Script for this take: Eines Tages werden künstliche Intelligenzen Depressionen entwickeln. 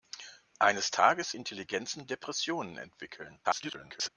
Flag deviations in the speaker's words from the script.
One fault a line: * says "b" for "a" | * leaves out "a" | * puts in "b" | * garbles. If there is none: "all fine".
* leaves out "werden künstliche"
* garbles